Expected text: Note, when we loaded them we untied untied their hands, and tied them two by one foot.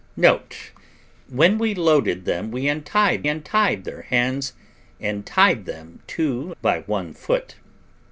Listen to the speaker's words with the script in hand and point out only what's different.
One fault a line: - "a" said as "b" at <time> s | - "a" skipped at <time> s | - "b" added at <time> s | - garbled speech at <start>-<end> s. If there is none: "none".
none